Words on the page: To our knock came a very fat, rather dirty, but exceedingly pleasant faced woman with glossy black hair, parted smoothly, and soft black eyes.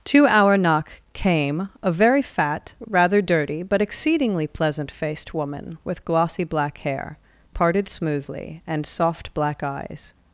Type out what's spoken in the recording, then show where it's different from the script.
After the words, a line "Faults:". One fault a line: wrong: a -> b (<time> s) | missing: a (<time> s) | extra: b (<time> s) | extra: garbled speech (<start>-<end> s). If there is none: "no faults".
To our knock came a very fat, rather dirty, but exceedingly pleasant faced woman with glossy black hair, parted smoothly, and soft black eyes.
Faults:
no faults